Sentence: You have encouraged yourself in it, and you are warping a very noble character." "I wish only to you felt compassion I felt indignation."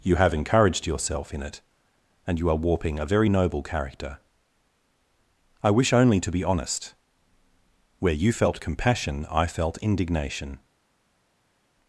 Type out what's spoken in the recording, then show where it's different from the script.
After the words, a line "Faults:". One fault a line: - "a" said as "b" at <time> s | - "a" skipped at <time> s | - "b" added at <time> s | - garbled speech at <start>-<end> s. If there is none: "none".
You have encouraged yourself in it, and you are warping a very noble character." "I wish only to be honest. Where you felt compassion I felt indignation."
Faults:
- "be honest Where" added at 6.3 s